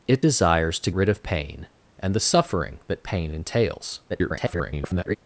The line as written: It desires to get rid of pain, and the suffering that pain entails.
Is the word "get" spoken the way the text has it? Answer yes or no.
no